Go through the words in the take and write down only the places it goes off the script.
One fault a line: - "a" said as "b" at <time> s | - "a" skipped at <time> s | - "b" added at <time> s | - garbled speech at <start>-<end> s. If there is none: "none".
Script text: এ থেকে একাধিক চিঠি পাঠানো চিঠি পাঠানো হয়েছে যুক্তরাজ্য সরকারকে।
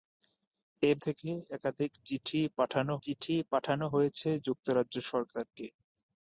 none